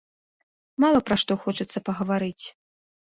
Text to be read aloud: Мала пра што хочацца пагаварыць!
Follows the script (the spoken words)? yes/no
yes